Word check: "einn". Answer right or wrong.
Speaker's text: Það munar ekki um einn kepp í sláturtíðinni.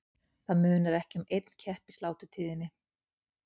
right